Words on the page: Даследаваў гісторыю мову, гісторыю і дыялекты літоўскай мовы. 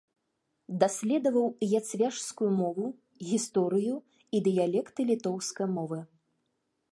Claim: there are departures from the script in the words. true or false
true